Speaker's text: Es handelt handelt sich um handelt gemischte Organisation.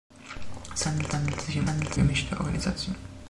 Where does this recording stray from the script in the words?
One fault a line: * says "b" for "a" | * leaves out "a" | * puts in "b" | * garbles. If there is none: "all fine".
all fine